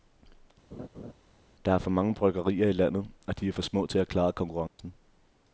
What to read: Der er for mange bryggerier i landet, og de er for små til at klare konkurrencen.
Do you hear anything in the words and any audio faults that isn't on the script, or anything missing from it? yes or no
yes